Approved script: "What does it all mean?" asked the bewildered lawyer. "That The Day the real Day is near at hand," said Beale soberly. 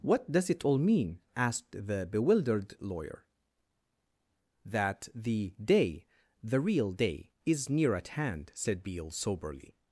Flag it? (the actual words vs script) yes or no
no